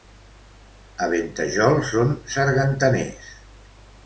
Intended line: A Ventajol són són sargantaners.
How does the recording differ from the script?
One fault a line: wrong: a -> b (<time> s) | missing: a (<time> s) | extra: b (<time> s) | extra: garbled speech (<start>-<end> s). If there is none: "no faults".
missing: són (2.1 s)